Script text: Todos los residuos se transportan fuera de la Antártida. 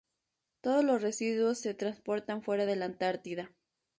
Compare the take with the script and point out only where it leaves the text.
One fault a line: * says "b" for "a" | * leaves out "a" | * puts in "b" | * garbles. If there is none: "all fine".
all fine